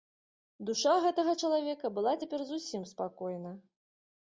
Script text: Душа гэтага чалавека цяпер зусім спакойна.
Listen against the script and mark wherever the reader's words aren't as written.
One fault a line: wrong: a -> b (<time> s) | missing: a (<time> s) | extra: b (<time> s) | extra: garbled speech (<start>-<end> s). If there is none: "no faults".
extra: была (2.0 s)